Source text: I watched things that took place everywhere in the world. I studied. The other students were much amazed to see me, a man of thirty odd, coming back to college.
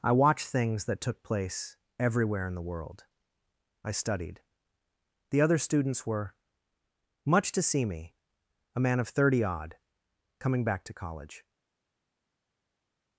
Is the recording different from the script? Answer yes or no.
yes